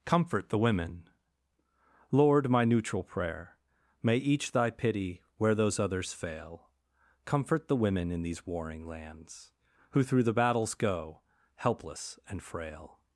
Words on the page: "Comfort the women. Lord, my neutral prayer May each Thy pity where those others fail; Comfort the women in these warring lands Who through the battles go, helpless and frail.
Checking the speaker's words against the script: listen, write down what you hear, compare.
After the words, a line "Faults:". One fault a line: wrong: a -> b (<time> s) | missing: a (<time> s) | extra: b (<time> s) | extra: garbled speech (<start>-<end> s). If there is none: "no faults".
"Comfort the women. Lord, my neutral prayer May each Thy pity where those others fail; Comfort the women in these warring lands Who through the battles go, helpless and frail.
Faults:
no faults